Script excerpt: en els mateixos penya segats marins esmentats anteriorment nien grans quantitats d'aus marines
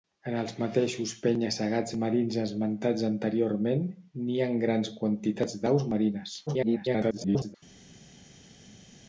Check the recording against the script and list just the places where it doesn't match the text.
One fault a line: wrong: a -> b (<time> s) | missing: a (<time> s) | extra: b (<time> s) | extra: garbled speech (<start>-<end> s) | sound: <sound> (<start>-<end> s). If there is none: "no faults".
extra: garbled speech (6.5-7.6 s)